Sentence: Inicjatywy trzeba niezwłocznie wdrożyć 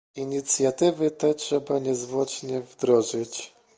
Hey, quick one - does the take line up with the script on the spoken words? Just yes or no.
no